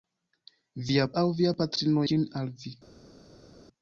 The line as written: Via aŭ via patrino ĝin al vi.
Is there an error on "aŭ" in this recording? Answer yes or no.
no